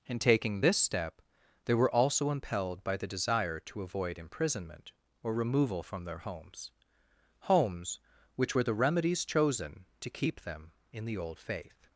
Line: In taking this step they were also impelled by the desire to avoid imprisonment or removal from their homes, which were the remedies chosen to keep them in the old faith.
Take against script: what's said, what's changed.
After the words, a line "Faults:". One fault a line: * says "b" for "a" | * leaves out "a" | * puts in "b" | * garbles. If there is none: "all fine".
In taking this step they were also impelled by the desire to avoid imprisonment or removal from their homes homes, which were the remedies chosen to keep them in the old faith.
Faults:
* puts in "homes"